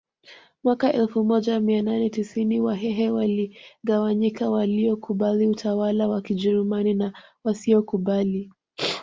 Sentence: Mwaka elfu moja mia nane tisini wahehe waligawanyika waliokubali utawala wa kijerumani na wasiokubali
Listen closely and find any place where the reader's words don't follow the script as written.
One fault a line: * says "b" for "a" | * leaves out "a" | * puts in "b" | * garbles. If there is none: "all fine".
all fine